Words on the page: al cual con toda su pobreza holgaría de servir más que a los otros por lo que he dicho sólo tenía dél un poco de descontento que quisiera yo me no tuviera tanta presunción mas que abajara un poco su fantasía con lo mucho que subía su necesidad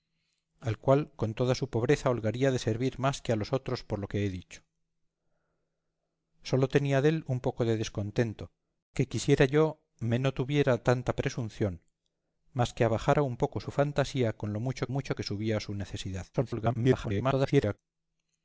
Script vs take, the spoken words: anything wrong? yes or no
yes